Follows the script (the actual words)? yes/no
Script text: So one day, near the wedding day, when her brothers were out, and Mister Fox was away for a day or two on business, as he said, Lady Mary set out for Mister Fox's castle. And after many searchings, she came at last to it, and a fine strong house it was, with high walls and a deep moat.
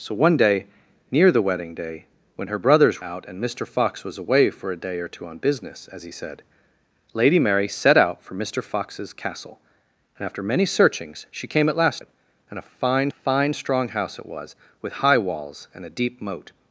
no